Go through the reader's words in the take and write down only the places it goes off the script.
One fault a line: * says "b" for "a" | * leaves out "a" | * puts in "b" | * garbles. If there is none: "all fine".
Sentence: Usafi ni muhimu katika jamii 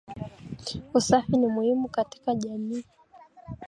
all fine